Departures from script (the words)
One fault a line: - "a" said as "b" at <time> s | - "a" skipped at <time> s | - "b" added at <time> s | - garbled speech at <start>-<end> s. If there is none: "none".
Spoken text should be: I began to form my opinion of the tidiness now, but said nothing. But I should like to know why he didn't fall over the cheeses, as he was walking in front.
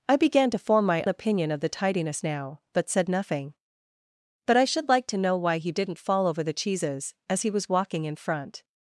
none